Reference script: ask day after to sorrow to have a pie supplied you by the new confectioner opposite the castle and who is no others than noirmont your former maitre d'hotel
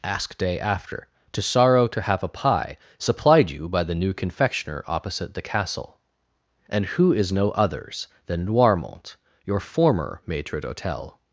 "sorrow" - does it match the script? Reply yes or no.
yes